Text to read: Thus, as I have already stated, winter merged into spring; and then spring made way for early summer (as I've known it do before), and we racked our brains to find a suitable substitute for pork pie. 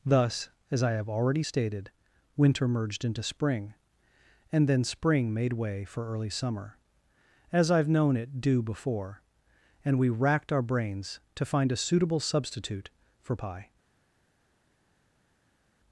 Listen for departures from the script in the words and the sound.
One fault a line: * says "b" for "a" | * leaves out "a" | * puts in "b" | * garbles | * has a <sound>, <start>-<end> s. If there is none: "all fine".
* leaves out "pork"